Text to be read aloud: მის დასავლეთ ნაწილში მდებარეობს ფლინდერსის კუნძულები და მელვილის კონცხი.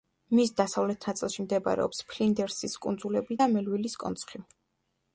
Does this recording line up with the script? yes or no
yes